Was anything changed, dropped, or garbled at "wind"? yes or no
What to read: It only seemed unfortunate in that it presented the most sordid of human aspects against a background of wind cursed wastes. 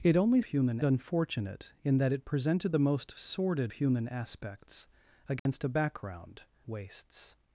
yes